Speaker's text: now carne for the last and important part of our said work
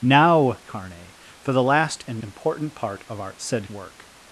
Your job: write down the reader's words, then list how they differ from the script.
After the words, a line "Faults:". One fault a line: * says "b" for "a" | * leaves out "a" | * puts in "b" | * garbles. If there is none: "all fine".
now carne for the last and important part of our said work
Faults:
all fine